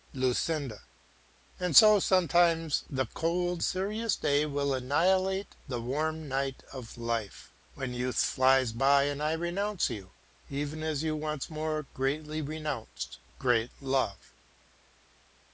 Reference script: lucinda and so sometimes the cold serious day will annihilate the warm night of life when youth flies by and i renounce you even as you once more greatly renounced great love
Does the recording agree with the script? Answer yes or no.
yes